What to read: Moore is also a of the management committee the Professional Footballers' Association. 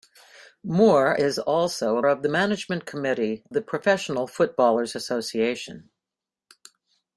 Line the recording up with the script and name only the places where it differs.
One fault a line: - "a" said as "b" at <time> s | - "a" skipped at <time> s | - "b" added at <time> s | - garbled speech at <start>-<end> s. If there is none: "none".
none